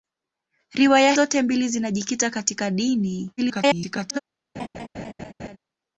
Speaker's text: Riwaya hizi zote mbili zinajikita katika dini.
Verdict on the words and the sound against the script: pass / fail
fail